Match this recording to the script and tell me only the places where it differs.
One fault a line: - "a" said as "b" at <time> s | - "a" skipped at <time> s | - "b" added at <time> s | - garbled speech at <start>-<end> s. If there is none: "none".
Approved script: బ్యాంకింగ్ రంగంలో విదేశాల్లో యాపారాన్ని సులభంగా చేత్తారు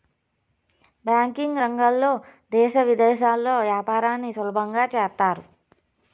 - "దేశ" added at 2.5 s